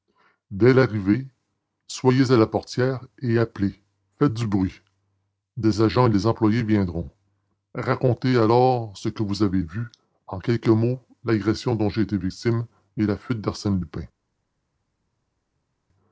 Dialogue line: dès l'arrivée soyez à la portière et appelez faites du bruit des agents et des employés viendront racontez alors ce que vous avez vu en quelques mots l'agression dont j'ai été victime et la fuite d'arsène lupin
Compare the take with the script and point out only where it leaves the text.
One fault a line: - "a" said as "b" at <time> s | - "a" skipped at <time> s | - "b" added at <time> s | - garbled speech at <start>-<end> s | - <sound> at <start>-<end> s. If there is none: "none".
none